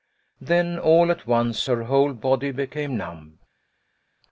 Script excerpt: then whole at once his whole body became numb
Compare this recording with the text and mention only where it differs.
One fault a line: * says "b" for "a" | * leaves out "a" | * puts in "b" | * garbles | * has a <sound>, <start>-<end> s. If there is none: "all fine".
* says "all" for "whole"
* says "her" for "his"